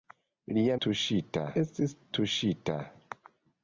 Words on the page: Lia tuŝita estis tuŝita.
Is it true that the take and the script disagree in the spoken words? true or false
false